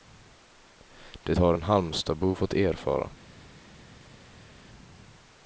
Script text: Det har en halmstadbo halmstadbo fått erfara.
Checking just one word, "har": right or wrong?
right